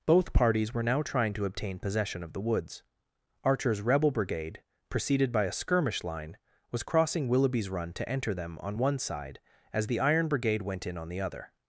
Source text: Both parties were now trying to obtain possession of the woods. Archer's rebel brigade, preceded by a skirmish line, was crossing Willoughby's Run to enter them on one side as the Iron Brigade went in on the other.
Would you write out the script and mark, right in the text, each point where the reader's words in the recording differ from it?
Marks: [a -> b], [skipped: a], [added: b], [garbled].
Both parties were now trying to obtain possession of the woods. Archer's rebel brigade, preceded by a skirmish line, was crossing Willoughby's Run to enter them on one side as the Iron Brigade went in on the other.